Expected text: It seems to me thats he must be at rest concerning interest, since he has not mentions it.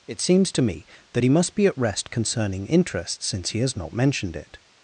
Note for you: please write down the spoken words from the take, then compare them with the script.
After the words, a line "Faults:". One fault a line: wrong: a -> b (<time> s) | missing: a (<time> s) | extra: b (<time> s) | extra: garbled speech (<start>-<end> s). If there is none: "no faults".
It seems to me that he must be at rest concerning interest, since he has not mentioned it.
Faults:
wrong: thats -> that (1.1 s)
wrong: mentions -> mentioned (3.9 s)